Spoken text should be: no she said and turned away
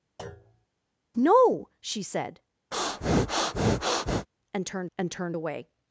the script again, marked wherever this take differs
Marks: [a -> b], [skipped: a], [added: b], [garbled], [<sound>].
[thud] no she said [breath] and turned [added: and turned] away